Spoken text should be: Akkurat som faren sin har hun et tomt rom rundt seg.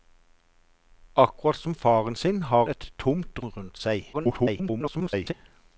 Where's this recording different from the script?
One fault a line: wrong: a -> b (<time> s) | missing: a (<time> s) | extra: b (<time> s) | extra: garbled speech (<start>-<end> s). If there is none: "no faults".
missing: hun (2.6 s)
missing: rom (3.4 s)
extra: garbled speech (4.1-5.3 s)